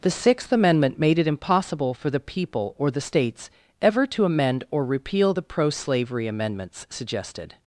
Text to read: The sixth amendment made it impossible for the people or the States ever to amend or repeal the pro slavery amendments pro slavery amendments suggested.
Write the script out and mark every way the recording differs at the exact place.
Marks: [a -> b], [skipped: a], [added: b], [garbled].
The sixth amendment made it impossible for the people or the States ever to amend or repeal the pro slavery amendments [skipped: pro slavery amendments] suggested.